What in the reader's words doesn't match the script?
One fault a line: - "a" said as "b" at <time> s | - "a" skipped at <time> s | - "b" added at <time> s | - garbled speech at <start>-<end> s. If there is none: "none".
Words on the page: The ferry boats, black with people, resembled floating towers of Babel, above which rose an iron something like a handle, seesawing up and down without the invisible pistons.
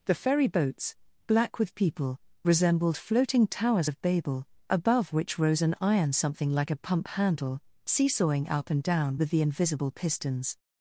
- "pump" added at 6.8 s
- "without" said as "with" at 9.2 s